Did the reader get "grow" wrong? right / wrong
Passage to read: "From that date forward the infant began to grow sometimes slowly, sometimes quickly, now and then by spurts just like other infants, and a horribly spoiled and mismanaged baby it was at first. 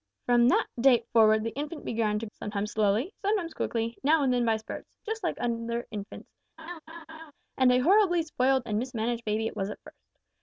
wrong